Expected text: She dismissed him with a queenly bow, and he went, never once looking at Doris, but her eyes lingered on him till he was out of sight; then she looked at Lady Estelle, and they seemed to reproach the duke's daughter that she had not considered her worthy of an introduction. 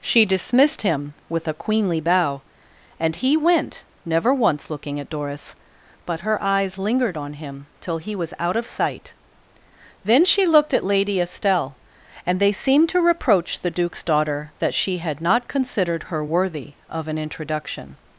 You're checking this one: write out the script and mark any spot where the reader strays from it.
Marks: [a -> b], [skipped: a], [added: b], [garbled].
She dismissed him with a queenly bow, and he went, never once looking at Doris, but her eyes lingered on him till he was out of sight; then she looked at Lady Estelle, and they seemed to reproach the duke's daughter that she had not considered her worthy of an introduction.